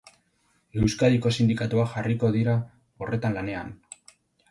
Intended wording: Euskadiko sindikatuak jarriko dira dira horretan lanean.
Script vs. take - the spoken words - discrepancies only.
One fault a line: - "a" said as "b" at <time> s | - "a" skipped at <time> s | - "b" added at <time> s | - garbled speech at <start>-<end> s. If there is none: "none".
- "dira" skipped at 2.6 s